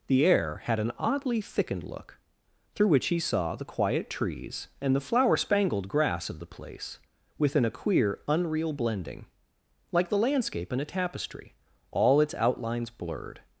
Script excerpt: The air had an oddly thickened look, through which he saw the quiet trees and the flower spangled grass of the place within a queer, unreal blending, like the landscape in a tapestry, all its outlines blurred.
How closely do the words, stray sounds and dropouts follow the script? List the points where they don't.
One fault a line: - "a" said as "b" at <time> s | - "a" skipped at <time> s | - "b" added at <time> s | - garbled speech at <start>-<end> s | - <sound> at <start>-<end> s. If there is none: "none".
none